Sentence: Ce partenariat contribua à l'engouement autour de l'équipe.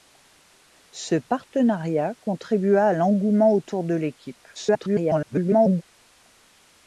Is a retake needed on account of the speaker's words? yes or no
yes